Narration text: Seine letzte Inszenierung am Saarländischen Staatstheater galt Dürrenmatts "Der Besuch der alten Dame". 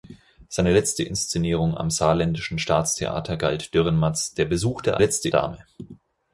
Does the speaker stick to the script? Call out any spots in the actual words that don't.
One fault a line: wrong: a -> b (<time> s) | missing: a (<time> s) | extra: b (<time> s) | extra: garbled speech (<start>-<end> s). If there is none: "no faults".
wrong: alten -> letzte (5.0 s)